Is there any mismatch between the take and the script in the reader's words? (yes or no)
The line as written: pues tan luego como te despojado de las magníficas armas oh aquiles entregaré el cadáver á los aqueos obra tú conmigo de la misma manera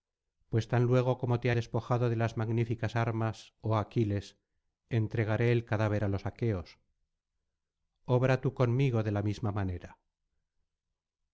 no